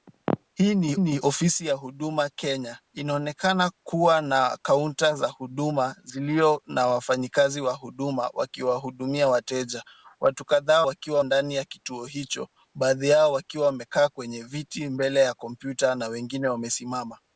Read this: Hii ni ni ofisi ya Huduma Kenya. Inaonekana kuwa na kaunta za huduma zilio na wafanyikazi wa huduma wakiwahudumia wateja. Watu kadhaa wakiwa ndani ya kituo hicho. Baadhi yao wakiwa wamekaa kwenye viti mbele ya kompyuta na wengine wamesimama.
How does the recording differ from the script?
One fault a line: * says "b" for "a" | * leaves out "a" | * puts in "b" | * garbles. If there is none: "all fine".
all fine